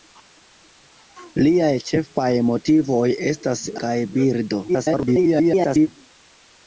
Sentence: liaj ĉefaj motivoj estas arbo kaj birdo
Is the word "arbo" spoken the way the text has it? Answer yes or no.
no